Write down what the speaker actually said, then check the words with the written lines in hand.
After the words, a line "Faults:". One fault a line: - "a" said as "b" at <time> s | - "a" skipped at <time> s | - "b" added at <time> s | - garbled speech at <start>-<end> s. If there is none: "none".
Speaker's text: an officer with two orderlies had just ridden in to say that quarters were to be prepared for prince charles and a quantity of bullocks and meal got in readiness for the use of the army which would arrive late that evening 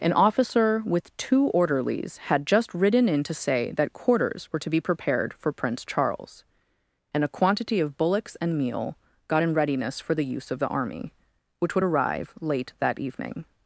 an officer with two orderlies had just ridden in to say that quarters were to be prepared for prince charles and a quantity of bullocks and meal got in readiness for the use of the army which would arrive late that evening
Faults:
none